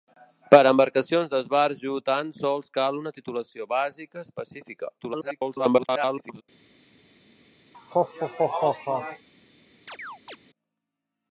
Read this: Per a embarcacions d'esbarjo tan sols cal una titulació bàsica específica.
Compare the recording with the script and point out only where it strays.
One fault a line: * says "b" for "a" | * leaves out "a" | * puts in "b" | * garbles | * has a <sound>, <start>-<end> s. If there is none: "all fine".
* garbles
* has a laugh, 7.7-9.3 s
* has a chirp, 9.9-10.4 s